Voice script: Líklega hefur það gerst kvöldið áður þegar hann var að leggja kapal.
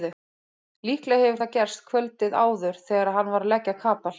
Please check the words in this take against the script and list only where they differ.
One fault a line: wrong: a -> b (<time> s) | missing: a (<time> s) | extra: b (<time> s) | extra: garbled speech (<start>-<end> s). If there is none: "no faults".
no faults